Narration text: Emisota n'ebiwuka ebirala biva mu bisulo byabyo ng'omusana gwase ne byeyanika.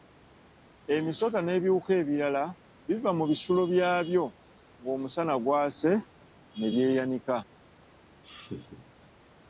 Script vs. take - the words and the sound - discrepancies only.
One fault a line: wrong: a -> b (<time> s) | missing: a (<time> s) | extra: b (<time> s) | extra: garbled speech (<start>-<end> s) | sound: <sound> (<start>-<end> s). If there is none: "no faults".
sound: laugh (8.2-9.0 s)